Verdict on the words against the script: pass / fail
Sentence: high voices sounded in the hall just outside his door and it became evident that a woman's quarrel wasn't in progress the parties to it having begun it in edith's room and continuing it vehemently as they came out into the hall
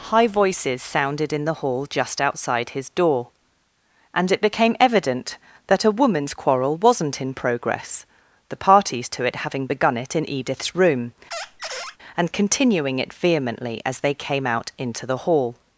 pass